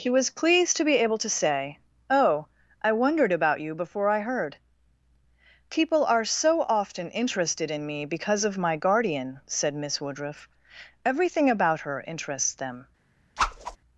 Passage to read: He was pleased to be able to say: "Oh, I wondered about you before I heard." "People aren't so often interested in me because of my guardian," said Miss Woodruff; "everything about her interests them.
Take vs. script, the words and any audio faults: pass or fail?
fail